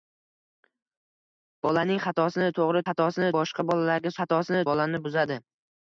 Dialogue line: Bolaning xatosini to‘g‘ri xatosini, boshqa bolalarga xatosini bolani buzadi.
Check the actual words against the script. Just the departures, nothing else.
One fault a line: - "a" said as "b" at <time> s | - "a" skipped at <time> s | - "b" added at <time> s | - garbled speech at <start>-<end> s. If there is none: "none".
none